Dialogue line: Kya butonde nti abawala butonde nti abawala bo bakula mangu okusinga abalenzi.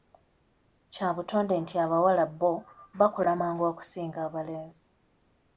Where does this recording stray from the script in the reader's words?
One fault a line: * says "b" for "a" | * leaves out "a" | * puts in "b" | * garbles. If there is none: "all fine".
* leaves out "butonde nti abawala"